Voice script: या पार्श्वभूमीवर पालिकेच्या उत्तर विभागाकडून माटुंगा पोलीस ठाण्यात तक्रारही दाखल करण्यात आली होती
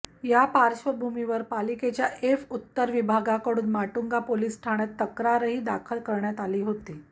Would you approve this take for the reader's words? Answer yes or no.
no